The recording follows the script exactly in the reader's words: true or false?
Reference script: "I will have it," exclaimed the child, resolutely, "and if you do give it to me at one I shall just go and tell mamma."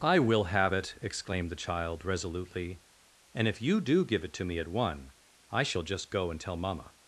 true